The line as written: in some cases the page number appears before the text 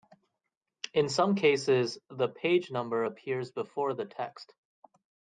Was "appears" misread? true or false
false